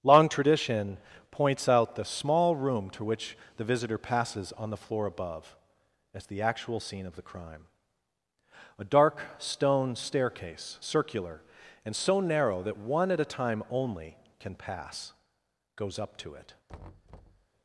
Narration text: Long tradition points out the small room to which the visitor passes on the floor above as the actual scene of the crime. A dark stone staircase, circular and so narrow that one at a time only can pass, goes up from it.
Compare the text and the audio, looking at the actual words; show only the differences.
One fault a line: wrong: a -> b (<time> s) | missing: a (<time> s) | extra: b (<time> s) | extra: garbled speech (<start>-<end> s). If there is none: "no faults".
wrong: from -> to (16.2 s)